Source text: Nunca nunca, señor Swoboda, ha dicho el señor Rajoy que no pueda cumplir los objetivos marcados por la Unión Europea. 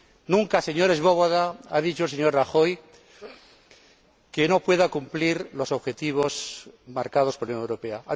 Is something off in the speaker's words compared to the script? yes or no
yes